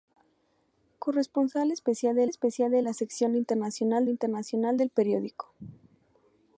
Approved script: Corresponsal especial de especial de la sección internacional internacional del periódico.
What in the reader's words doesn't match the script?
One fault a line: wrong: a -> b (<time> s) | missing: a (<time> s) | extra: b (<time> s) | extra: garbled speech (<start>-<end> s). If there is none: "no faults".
no faults